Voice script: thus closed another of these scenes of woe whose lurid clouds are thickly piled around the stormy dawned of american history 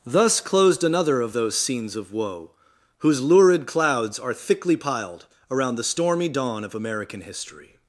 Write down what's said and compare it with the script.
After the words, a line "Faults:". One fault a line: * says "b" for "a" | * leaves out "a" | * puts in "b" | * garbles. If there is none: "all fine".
thus closed another of those scenes of woe whose lurid clouds are thickly piled around the stormy dawn of american history
Faults:
* says "those" for "these"
* says "dawn" for "dawned"